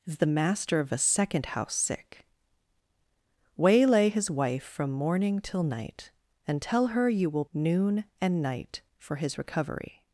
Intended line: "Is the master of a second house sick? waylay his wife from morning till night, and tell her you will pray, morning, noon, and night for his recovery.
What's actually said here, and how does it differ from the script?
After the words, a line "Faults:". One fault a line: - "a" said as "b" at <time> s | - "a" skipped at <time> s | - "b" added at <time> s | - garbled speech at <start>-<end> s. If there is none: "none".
"Is the master of a second house sick? waylay his wife from morning till night, and tell her you will noon, and night for his recovery.
Faults:
- "pray morning" skipped at 7.4 s